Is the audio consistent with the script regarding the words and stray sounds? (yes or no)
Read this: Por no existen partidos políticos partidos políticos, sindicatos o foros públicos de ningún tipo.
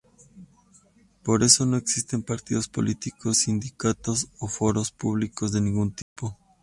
no